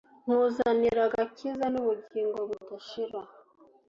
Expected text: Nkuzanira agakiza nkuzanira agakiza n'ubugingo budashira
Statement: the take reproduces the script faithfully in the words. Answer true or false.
false